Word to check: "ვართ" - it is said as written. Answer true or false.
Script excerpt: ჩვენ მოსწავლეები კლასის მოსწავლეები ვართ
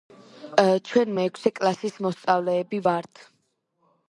true